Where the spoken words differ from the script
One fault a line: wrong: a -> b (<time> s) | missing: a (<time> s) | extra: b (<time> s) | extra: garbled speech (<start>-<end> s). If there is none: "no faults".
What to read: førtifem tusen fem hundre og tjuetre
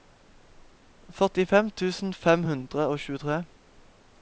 no faults